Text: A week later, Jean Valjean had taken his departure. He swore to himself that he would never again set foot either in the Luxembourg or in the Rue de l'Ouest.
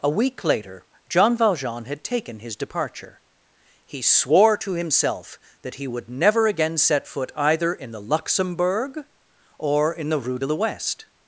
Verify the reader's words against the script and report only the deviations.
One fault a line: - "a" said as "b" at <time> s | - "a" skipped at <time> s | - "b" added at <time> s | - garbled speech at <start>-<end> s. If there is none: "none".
none